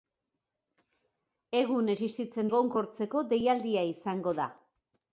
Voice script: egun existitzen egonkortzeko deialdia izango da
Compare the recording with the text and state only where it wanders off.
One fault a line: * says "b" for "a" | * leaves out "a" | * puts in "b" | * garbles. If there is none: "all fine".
all fine